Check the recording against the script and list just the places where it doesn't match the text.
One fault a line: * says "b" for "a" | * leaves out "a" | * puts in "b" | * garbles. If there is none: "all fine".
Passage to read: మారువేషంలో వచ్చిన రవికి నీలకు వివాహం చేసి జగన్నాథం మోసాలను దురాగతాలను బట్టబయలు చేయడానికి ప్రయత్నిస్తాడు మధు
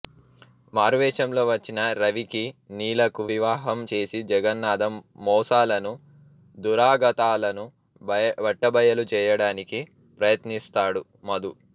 all fine